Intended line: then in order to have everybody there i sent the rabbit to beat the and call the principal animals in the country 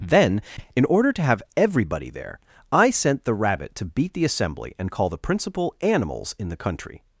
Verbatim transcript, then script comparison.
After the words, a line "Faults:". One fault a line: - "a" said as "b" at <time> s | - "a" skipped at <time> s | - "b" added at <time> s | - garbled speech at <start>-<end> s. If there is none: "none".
then in order to have everybody there i sent the rabbit to beat the assembly and call the principal animals in the country
Faults:
- "assembly" added at 4.2 s